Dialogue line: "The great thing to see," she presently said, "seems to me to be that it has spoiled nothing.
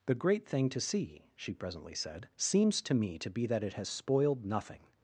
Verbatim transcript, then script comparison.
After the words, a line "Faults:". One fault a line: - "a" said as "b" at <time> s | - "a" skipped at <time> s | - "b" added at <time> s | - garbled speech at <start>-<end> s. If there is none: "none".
"The great thing to see," she presently said, "seems to me to be that it has spoiled nothing.
Faults:
none